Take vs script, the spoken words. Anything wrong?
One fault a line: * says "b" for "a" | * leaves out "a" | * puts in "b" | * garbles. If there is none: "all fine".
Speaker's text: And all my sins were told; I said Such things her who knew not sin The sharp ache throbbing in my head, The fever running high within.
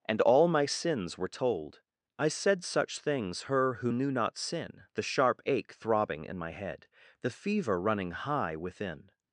all fine